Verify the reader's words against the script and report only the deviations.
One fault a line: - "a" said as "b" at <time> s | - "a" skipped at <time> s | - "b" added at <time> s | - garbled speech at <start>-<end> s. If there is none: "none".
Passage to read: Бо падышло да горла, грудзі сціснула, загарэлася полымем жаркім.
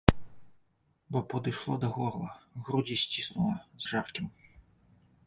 - "загарэлася полымем" skipped at 3.6 s